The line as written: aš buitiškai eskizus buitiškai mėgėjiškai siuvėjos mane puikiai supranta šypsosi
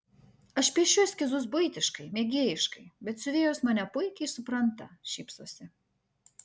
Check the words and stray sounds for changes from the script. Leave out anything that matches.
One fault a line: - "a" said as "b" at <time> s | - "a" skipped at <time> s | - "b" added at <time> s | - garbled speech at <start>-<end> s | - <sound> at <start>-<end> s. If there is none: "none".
- "buitiškai" said as "piešiu" at 0.8 s
- "bet" added at 3.1 s